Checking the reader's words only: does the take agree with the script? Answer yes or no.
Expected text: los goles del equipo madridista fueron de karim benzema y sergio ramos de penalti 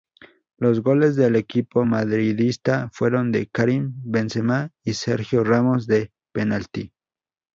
yes